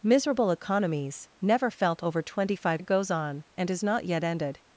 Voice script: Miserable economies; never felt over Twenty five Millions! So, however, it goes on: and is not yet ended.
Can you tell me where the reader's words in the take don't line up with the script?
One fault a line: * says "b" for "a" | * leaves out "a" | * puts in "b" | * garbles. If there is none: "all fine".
* leaves out "Millions So however"